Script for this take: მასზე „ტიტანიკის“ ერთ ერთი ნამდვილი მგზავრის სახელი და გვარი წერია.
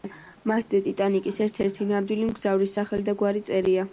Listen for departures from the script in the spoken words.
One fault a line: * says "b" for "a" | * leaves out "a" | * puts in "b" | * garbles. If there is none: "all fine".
all fine